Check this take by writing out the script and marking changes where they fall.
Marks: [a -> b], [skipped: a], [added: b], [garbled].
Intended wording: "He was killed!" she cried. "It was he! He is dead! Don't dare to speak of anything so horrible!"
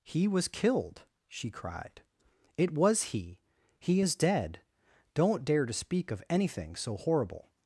"He was killed!" she cried. "It was he! He is dead! Don't dare to speak of anything so horrible!"